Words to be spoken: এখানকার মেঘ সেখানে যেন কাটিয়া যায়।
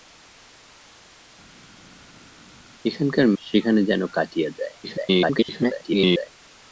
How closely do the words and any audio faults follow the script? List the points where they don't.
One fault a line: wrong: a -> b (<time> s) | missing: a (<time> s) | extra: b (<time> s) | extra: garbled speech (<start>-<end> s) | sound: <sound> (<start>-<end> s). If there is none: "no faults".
missing: মেঘ (3.3 s)
extra: garbled speech (4.8-6.3 s)